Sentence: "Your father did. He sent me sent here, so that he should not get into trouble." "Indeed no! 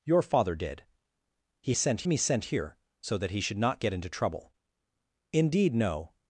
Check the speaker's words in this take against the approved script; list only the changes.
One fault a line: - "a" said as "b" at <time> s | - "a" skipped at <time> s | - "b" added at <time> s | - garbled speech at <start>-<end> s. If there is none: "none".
none